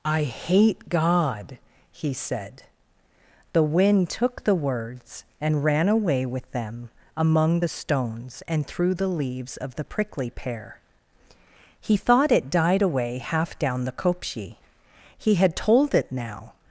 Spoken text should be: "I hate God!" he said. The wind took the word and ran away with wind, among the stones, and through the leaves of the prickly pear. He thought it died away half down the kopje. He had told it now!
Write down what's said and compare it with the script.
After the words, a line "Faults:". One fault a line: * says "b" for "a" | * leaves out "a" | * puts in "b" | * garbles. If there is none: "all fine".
"I hate God!" he said. The wind took the words and ran away with them, among the stones, and through the leaves of the prickly pear. He thought it died away half down the kopje. He had told it now!
Faults:
* says "words" for "word"
* says "them" for "wind"